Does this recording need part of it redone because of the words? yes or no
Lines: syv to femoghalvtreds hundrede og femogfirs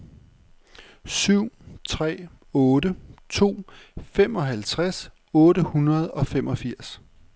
yes